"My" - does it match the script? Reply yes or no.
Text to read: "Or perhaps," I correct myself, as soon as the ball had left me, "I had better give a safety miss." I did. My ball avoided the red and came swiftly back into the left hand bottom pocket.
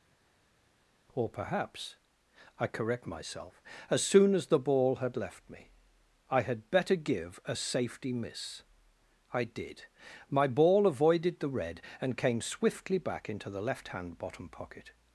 yes